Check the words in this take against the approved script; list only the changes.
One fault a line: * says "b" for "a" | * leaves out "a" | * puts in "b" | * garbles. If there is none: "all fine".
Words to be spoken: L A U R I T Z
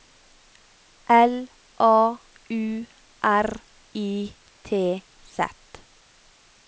all fine